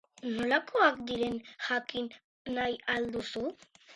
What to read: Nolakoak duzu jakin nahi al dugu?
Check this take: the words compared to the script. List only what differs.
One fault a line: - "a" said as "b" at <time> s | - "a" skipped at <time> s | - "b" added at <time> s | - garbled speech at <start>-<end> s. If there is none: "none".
- "duzu" said as "diren" at 1.1 s
- "dugu" said as "duzu" at 3.2 s